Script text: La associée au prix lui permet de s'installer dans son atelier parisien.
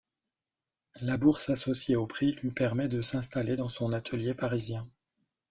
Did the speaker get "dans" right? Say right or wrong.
right